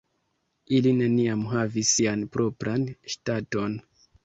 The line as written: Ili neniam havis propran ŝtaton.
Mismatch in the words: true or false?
true